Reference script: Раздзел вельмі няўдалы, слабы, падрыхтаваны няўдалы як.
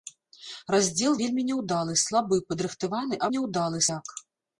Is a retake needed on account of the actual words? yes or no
no